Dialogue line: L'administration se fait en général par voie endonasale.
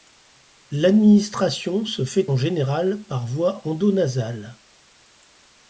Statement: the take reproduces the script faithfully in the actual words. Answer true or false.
true